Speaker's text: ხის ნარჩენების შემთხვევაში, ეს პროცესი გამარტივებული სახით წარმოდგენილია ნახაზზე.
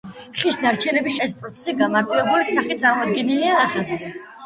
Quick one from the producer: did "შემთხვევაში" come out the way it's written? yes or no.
no